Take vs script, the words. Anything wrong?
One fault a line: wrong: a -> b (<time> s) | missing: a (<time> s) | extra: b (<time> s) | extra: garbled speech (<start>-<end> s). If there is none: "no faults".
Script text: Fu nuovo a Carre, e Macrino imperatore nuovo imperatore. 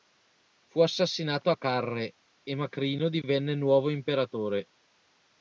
wrong: nuovo -> assassinato (0.8 s)
wrong: imperatore -> divenne (3.1 s)